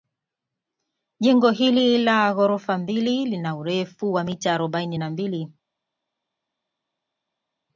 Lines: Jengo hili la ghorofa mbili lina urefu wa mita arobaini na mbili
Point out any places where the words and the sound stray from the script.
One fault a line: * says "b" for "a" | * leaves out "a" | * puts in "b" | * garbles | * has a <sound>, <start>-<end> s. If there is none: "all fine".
all fine